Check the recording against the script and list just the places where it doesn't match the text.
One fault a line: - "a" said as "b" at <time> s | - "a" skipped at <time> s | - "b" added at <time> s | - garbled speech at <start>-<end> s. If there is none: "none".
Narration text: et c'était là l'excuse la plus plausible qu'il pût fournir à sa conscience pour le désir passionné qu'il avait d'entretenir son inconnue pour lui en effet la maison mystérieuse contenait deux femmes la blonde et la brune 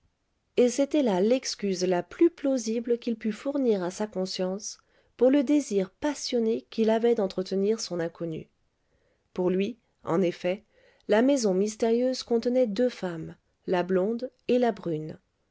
none